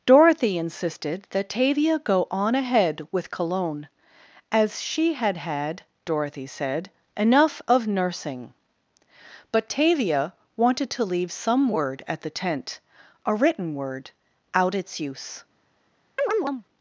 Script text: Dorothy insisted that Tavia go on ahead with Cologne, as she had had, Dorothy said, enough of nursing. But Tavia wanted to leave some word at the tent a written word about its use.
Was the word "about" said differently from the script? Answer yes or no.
yes